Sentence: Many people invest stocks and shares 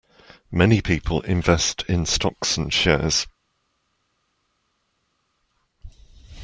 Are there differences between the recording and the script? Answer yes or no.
yes